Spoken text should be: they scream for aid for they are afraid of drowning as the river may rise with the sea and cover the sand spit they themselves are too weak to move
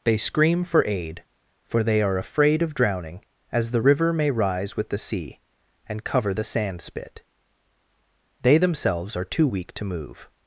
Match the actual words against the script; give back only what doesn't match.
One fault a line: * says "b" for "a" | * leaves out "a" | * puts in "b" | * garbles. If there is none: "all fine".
all fine